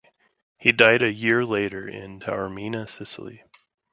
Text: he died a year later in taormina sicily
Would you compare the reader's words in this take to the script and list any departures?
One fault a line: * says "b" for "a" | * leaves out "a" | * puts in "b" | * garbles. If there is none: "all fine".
all fine